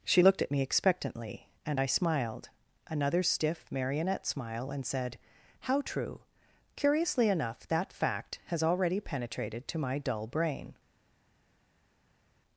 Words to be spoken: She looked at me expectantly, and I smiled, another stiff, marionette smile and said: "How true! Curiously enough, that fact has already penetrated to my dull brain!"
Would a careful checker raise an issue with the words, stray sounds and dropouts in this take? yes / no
no